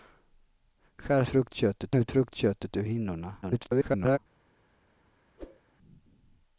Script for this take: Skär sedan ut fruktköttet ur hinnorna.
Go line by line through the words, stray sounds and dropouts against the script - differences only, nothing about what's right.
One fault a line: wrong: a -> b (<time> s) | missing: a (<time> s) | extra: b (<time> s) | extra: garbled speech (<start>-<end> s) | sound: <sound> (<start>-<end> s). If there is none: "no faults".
wrong: sedan -> fruktköttet (1.3 s)
extra: garbled speech (3.4-4.2 s)
sound: whoosh (5.4-5.6 s)